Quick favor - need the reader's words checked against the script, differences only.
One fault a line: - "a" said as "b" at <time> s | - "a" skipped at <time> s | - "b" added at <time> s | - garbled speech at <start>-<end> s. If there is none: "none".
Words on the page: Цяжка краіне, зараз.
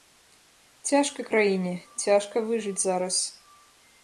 - "цяжка выжыць" added at 2.0 s